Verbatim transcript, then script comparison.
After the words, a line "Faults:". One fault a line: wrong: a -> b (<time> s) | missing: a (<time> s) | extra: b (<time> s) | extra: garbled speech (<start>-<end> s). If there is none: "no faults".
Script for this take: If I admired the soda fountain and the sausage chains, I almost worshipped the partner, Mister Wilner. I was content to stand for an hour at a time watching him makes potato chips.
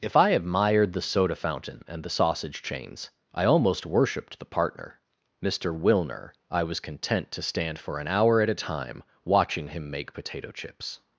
If I admired the soda fountain and the sausage chains, I almost worshipped the partner, Mister Wilner. I was content to stand for an hour at a time watching him make potato chips.
Faults:
wrong: makes -> make (9.9 s)